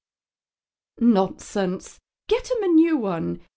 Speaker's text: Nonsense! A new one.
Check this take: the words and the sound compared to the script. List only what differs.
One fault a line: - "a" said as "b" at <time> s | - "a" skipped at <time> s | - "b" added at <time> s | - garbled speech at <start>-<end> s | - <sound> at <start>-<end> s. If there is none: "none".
- "Get him" added at 2.3 s